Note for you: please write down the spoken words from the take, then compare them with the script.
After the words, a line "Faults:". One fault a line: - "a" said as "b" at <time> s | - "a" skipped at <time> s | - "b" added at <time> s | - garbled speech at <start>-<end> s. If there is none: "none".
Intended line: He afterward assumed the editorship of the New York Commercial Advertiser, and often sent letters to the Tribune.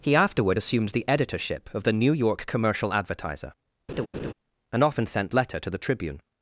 He afterward assumed the editorship of the New York Commercial Advertiser, and often sent letter to the Tribune.
Faults:
- "letters" said as "letter" at 5.3 s